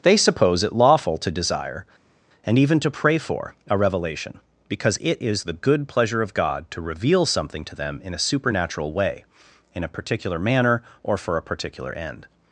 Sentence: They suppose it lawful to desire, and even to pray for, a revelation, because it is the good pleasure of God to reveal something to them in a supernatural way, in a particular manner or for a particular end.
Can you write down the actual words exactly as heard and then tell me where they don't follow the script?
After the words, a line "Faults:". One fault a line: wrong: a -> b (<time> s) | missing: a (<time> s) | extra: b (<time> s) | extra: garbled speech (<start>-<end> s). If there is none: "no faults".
They suppose it lawful to desire, and even to pray for, a revelation, because it is the good pleasure of God to reveal something to them in a supernatural way, in a particular manner or for a particular end.
Faults:
no faults